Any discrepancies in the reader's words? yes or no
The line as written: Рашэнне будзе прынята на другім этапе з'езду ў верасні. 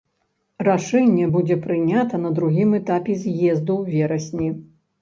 no